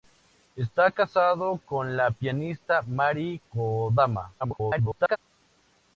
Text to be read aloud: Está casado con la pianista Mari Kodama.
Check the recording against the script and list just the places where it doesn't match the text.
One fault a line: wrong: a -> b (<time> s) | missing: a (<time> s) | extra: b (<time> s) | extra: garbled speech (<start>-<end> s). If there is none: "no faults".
extra: garbled speech (4.4-5.2 s)